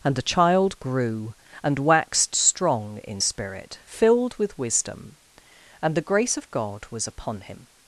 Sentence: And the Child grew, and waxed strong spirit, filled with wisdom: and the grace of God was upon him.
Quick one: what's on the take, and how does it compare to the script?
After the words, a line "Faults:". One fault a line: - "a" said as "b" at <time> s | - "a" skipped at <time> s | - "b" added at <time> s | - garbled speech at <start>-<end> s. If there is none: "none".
And the Child grew, and waxed strong in spirit, filled with wisdom: and the grace of God was upon him.
Faults:
- "in" added at 3.0 s